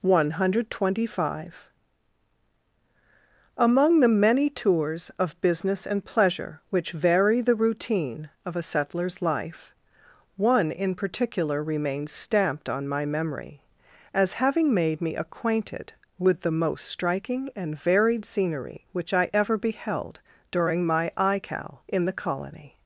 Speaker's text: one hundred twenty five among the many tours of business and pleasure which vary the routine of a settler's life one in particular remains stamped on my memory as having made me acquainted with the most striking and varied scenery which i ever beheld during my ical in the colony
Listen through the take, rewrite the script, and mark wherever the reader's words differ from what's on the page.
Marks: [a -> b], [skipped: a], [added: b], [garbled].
one hundred twenty five among the many tours of business and pleasure which vary the routine of a settler's life one in particular remains stamped on my memory as having made me acquainted with the most striking and varied scenery which i ever beheld during my ical in the colony